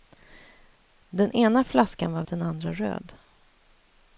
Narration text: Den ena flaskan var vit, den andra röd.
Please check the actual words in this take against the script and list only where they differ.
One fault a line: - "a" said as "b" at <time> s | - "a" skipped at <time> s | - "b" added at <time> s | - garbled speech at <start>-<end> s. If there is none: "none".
- "vit" skipped at 2.2 s